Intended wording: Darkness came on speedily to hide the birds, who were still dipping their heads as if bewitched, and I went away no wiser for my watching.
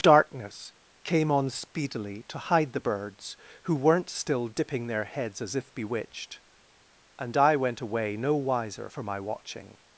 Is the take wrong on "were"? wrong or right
wrong